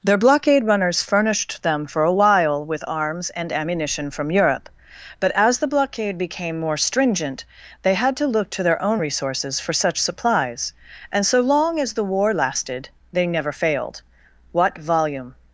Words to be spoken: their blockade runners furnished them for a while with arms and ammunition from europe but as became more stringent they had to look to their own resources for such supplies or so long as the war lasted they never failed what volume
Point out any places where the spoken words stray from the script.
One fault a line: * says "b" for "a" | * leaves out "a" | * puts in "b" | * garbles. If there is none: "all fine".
* puts in "the blockade"
* says "and" for "or"